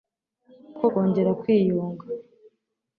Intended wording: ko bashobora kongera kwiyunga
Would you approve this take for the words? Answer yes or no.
no